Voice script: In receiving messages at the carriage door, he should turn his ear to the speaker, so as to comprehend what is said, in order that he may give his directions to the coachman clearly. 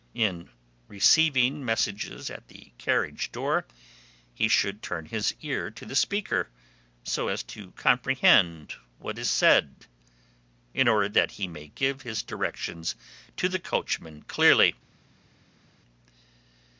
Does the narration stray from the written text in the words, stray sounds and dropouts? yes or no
no